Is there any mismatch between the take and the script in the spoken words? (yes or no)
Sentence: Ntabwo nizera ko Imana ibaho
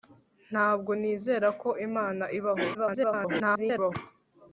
yes